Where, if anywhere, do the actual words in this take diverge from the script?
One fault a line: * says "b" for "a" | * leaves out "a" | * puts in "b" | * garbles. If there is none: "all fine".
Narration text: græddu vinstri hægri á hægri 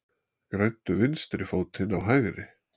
* says "fótinn" for "hægri"